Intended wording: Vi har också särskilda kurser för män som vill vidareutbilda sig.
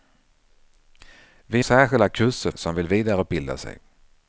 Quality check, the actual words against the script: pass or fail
fail